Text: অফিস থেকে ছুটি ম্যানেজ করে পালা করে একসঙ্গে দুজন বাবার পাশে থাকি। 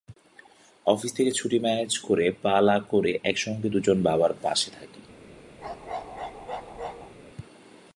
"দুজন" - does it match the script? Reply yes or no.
yes